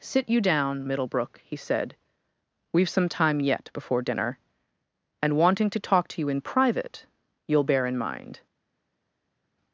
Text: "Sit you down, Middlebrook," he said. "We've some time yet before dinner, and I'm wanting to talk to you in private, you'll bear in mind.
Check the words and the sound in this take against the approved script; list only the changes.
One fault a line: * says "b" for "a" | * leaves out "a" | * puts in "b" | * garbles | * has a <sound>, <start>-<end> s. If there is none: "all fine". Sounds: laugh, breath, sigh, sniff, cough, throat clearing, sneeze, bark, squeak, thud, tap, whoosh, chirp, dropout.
* leaves out "I'm"